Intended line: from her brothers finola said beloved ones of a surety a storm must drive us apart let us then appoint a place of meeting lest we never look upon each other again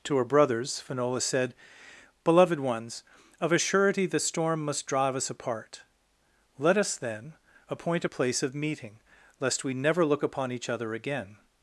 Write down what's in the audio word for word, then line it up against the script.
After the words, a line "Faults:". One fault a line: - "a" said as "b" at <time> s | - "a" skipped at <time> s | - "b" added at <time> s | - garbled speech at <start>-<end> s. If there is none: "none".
to her brothers finola said beloved ones of a surety the storm must drive us apart let us then appoint a place of meeting lest we never look upon each other again
Faults:
- "from" said as "to" at 0.1 s
- "a" said as "the" at 4.1 s